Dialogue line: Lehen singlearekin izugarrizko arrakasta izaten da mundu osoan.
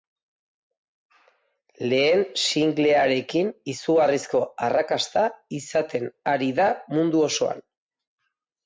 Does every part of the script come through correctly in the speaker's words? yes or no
no